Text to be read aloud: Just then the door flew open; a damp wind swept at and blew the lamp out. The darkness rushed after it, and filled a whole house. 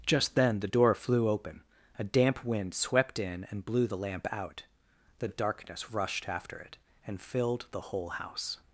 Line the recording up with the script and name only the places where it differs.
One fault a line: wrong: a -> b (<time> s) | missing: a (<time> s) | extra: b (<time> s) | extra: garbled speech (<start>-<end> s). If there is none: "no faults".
wrong: at -> in (3.2 s)
wrong: a -> the (7.7 s)